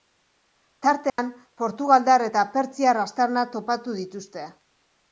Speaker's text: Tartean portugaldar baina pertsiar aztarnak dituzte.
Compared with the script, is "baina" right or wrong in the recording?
wrong